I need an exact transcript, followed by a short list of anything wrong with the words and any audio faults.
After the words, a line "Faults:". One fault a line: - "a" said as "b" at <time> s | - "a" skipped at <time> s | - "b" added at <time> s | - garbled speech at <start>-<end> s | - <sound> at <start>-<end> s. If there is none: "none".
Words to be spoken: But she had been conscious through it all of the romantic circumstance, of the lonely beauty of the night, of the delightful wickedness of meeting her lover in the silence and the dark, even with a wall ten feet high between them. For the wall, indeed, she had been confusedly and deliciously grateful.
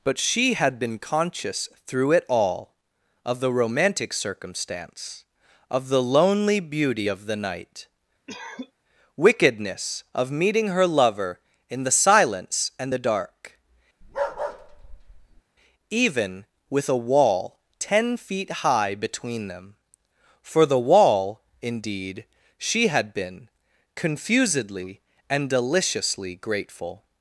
But she had been conscious through it all of the romantic circumstance, of the lonely beauty of the night, wickedness of meeting her lover in the silence and the dark, even with a wall ten feet high between them. For the wall, indeed, she had been confusedly and deliciously grateful.
Faults:
- "of the delightful" skipped at 7.9 s
- cough at 8.3-8.7 s
- bark at 14.0-15.4 s